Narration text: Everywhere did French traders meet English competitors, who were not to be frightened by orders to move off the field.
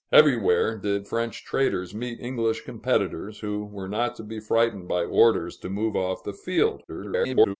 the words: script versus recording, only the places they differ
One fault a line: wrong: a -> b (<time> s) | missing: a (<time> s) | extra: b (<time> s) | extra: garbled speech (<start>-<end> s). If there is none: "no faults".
extra: garbled speech (6.9-7.6 s)